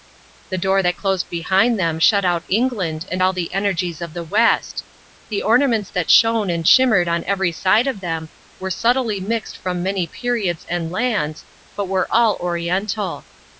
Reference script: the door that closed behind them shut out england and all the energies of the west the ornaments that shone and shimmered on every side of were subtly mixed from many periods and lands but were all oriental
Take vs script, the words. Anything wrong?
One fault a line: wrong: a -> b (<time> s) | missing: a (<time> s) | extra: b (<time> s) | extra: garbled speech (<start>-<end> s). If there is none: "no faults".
extra: them (8.0 s)